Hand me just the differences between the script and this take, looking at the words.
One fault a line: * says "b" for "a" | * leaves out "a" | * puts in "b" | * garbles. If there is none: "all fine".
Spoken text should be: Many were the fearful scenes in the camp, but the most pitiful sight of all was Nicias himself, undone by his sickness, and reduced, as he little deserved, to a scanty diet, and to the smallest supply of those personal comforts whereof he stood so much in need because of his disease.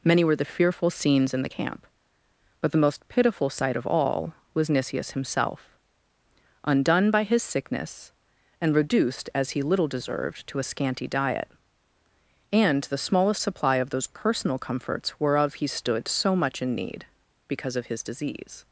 * leaves out "to"